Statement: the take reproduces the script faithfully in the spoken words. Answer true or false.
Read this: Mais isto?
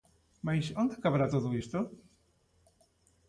false